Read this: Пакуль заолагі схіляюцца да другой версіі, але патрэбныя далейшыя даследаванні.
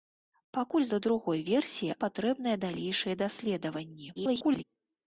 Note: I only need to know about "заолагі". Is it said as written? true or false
false